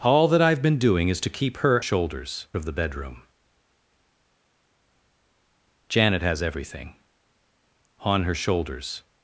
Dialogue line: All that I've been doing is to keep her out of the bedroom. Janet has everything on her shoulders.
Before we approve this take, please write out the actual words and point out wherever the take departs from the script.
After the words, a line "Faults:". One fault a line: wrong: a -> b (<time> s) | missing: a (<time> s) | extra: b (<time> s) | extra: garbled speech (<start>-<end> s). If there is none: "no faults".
All that I've been doing is to keep her shoulders of the bedroom. Janet has everything on her shoulders.
Faults:
wrong: out -> shoulders (1.8 s)